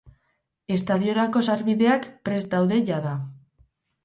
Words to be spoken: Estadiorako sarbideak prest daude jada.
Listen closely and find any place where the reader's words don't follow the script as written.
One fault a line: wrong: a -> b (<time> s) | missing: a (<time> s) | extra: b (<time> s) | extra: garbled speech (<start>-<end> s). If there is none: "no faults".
no faults